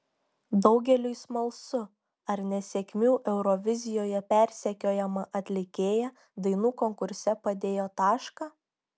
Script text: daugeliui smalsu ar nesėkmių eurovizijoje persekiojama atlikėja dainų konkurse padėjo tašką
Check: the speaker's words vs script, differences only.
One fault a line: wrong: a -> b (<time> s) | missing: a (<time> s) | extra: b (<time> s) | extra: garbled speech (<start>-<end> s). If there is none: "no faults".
no faults